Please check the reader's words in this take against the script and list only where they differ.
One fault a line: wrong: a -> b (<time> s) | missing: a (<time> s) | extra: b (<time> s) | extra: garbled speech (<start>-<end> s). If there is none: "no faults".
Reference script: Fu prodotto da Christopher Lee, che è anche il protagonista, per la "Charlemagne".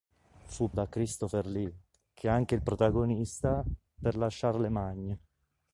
missing: prodotto (0.7 s)